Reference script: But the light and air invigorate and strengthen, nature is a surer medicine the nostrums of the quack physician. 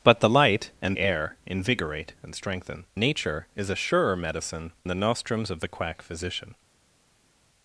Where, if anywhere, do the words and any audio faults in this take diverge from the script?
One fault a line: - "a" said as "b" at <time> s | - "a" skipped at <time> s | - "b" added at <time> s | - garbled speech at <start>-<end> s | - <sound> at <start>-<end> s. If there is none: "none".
none